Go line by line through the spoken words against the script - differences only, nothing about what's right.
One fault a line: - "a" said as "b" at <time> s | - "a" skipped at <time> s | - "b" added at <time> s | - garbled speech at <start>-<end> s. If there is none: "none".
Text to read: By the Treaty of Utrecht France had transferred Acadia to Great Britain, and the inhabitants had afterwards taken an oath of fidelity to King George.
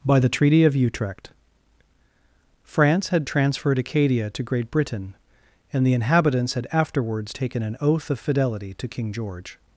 none